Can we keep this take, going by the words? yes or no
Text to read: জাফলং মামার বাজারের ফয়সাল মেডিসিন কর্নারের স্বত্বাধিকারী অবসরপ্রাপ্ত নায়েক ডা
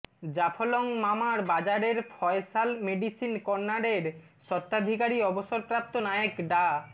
yes